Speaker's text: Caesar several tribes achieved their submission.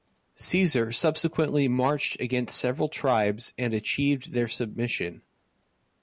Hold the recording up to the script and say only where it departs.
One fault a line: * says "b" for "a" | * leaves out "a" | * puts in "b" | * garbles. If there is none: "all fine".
* puts in "subsequently marched against"
* puts in "and"